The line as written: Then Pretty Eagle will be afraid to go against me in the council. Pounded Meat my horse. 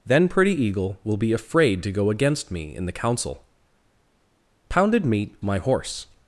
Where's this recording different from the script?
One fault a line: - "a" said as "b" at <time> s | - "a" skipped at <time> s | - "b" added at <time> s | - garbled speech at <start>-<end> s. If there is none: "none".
none